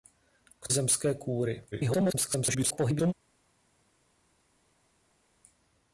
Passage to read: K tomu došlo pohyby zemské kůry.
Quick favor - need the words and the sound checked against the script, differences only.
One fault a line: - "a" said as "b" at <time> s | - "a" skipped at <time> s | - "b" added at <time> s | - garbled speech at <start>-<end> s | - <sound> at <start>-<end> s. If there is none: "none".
- "tomu došlo pohyby" skipped at 0.7 s
- garbled speech at 1.7-3.1 s